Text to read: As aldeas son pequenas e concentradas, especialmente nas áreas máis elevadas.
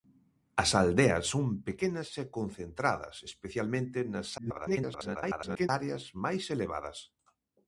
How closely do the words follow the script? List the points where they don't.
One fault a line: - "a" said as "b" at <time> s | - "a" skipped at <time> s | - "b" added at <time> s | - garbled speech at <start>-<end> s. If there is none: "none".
- garbled speech at 4.4-5.7 s